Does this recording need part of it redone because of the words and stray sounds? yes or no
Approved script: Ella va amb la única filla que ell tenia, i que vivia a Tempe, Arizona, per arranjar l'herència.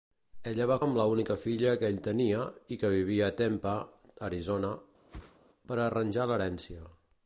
yes